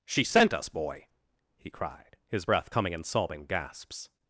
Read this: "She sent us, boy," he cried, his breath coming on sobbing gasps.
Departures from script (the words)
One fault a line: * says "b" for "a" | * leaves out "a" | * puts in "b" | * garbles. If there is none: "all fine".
* says "in" for "on"